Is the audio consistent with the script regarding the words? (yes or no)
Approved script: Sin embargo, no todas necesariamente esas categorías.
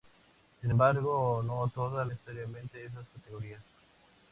yes